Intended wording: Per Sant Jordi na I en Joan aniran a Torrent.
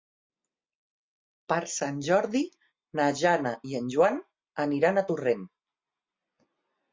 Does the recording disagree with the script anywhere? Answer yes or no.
yes